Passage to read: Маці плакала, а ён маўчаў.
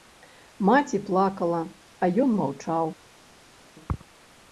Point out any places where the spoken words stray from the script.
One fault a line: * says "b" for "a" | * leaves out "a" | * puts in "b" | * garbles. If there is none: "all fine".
all fine